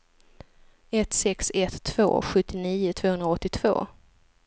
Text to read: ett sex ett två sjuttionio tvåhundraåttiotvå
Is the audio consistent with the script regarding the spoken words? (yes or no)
yes